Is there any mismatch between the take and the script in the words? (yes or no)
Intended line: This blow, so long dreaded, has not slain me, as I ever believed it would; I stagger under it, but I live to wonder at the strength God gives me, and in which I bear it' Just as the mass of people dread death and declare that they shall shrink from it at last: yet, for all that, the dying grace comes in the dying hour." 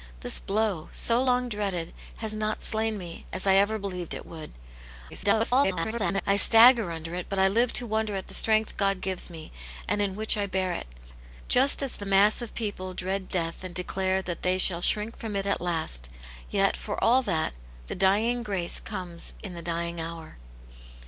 yes